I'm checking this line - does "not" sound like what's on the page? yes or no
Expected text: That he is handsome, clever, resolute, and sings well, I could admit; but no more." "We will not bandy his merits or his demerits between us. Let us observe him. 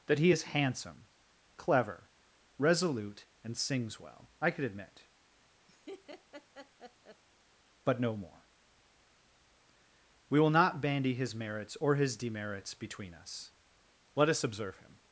yes